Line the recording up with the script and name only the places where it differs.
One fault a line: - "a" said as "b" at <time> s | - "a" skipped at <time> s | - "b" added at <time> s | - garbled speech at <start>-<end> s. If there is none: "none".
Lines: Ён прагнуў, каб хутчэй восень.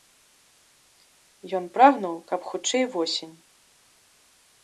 none